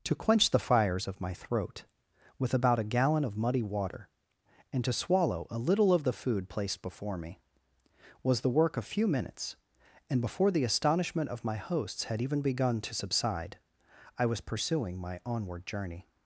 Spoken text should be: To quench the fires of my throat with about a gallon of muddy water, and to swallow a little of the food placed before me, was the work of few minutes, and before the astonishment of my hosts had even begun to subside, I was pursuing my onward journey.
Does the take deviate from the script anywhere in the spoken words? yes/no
no